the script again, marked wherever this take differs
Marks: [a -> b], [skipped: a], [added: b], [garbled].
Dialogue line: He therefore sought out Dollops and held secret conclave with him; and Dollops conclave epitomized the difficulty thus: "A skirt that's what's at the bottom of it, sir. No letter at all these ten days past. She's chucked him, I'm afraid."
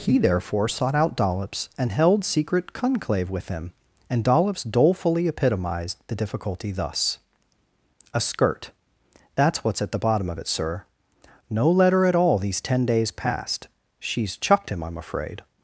He therefore sought out Dollops and held secret conclave with him; and Dollops [conclave -> dolefully] epitomized the difficulty thus: "A skirt that's what's at the bottom of it, sir. No letter at all these ten days past. She's chucked him, I'm afraid."